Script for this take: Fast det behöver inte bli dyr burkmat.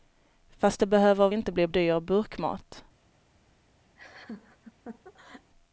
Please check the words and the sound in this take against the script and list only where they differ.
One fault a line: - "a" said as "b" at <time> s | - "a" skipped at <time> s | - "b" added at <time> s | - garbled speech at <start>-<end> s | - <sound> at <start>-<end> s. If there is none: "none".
- laugh at 4.0-5.5 s